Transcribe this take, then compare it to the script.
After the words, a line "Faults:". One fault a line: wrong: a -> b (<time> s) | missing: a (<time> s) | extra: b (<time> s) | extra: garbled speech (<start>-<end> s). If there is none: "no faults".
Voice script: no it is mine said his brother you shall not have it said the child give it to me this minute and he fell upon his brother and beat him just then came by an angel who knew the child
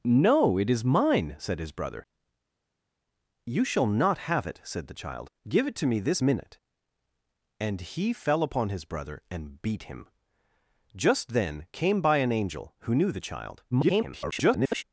no it is mine said his brother you shall not have it said the child give it to me this minute and he fell upon his brother and beat him just then came by an angel who knew the child [garbled]
Faults:
extra: garbled speech (13.7-14.8 s)